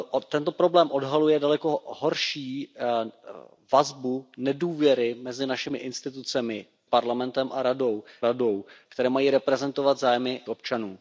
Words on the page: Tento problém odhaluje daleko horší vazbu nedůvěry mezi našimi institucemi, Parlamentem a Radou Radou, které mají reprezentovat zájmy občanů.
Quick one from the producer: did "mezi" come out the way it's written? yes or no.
yes